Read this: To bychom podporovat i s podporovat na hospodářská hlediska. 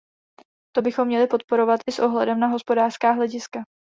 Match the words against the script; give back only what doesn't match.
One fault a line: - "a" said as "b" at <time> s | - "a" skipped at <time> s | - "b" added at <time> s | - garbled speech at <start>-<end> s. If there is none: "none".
- "měli" added at 1.1 s
- "podporovat" said as "ohledem" at 2.0 s